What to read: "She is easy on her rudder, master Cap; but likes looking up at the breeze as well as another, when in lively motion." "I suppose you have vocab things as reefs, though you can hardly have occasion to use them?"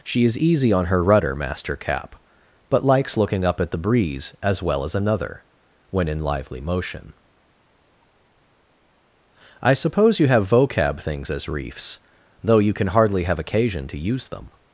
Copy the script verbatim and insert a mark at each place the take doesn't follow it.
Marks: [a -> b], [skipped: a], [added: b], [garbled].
"She is easy on her rudder, master Cap; but likes looking up at the breeze as well as another, when in lively motion." "I suppose you have vocab things as reefs, though you can hardly have occasion to use them?"